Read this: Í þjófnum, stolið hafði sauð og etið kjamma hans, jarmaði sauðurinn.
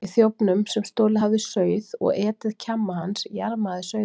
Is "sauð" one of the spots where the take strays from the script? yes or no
no